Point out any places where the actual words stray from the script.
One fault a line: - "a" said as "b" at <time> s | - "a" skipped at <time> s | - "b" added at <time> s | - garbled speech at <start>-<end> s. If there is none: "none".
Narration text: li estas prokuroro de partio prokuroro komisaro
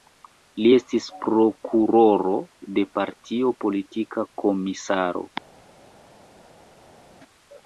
- "estas" said as "estis" at 0.7 s
- "prokuroro" said as "politika" at 3.7 s